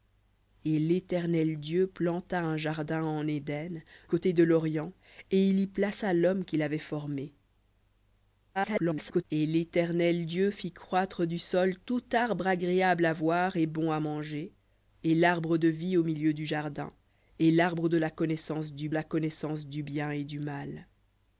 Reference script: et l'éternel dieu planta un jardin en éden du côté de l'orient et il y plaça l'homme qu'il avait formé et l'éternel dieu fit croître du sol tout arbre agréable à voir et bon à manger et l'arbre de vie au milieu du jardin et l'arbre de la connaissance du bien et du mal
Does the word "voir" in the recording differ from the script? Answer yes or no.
no